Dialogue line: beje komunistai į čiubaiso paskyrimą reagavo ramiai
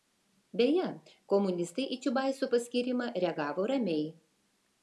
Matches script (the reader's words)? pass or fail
pass